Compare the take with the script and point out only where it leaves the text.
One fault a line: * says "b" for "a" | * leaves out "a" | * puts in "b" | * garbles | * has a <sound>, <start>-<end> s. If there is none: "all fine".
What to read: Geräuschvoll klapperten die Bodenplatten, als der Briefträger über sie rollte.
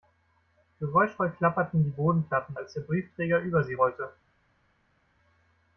all fine